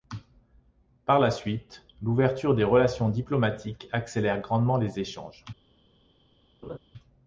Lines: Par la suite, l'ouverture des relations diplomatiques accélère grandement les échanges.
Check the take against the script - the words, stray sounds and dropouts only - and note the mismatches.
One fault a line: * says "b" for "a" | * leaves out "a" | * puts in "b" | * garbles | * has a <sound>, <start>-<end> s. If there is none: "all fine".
* has a laugh, 6.6-6.8 s